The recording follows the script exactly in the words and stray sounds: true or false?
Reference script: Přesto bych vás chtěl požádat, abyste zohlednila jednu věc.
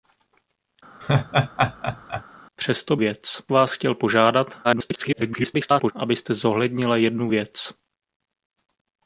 false